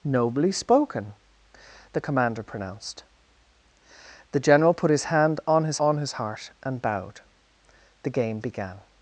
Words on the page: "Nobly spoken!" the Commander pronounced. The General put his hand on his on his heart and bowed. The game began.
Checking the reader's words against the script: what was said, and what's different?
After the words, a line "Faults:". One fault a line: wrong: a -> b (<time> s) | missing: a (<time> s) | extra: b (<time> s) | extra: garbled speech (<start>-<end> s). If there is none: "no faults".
"Nobly spoken!" the Commander pronounced. The General put his hand on his on his heart and bowed. The game began.
Faults:
no faults